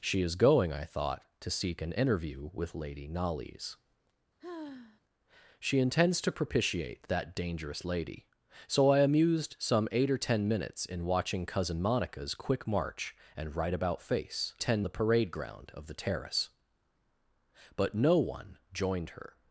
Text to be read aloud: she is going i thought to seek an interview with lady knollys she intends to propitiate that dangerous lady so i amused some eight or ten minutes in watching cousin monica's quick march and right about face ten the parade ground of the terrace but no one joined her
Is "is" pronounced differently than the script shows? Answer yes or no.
no